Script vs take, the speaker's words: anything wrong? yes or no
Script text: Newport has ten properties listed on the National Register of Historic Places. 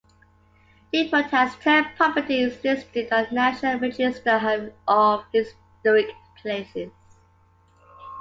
no